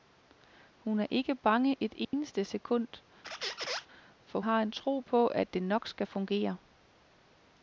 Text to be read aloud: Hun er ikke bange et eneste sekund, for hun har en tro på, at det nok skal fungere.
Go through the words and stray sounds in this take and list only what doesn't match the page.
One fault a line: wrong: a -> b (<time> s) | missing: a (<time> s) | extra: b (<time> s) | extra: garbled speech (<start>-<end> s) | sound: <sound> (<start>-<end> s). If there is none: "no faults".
sound: dropout (2.0-2.1 s)
sound: squeak (3.2-3.9 s)
missing: hun (4.4 s)